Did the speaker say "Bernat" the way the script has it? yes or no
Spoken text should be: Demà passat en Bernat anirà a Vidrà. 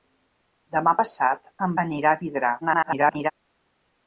no